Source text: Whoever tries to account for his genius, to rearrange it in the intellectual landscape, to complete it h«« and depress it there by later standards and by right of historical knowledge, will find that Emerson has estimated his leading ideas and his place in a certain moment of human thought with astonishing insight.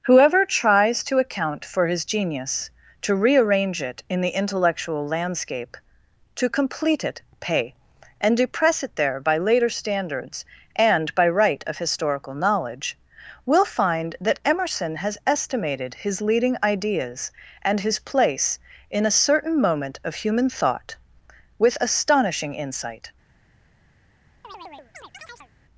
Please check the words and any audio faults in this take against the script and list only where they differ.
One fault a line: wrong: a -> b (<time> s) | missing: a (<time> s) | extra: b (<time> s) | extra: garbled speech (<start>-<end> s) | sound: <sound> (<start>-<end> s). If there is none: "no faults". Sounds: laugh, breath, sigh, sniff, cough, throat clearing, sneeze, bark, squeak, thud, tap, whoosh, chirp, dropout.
wrong: h -> pay (7.4 s)
sound: chirp (24.4-25.5 s)